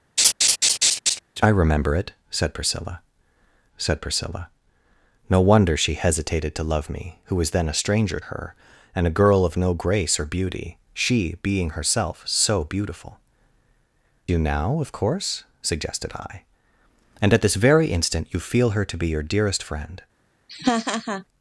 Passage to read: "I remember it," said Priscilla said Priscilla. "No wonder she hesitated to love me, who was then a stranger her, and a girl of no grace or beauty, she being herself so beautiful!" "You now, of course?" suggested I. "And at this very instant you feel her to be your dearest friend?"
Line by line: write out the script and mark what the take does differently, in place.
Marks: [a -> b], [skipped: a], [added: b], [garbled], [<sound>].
[laugh] "I remember it," said Priscilla said Priscilla. "No wonder she hesitated to love me, who was then a stranger her, and a girl of no grace or beauty, she being herself so beautiful!" "You now, of course?" suggested I. "And at this very instant you feel her to be your dearest friend?" [laugh]